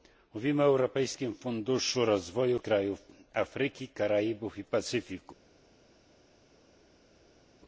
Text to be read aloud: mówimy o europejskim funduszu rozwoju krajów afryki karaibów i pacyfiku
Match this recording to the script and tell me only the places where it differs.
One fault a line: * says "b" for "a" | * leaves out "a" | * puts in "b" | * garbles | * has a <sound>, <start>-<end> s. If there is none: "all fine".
all fine